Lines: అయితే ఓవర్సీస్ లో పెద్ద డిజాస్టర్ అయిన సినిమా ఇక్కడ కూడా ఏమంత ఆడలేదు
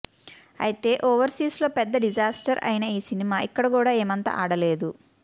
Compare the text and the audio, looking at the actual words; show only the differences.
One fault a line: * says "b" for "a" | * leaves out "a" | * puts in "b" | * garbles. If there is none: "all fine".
* puts in "ఈ"